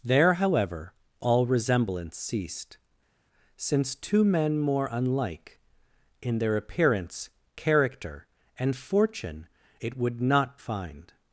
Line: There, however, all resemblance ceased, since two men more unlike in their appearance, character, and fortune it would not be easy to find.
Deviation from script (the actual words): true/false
true